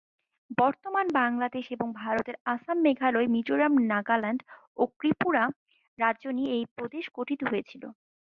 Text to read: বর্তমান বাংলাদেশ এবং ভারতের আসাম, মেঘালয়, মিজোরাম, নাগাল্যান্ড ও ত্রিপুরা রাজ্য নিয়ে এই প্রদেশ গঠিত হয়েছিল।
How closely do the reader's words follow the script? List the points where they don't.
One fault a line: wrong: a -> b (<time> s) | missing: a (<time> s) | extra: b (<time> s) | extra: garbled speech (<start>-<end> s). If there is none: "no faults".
no faults